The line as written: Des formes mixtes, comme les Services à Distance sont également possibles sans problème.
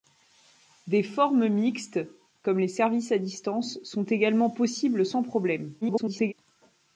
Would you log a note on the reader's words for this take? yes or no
yes